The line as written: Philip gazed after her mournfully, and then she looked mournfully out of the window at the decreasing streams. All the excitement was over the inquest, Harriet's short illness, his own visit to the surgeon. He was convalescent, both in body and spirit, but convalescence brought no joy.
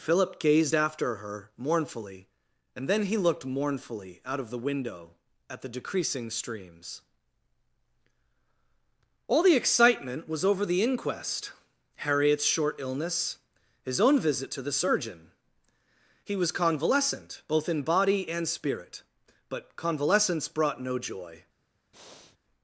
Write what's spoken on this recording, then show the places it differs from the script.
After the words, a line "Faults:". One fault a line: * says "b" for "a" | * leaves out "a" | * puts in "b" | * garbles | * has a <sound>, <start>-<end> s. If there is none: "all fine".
Philip gazed after her mournfully, and then he looked mournfully out of the window at the decreasing streams. All the excitement was over the inquest, Harriet's short illness, his own visit to the surgeon. He was convalescent, both in body and spirit, but convalescence brought no joy.
Faults:
* says "he" for "she"
* has a breath, 21.9-22.4 s